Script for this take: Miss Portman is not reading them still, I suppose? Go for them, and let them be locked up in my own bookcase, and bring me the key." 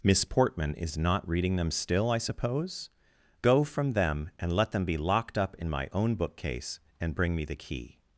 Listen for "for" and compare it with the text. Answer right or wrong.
wrong